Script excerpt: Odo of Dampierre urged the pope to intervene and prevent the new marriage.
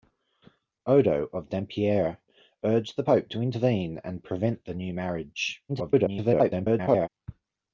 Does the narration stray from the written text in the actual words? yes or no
yes